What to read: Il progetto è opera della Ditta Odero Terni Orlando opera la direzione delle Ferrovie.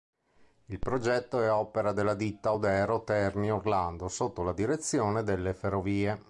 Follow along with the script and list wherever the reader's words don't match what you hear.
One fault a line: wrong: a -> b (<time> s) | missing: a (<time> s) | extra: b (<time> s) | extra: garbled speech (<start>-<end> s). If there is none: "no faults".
wrong: opera -> sotto (4.1 s)